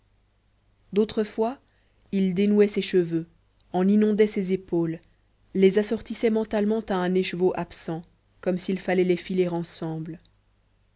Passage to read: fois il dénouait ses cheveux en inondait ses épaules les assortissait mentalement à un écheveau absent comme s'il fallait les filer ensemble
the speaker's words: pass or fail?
pass